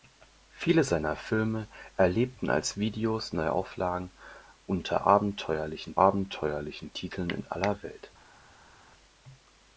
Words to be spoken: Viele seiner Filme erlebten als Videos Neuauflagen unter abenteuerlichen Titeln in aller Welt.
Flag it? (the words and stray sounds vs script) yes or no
yes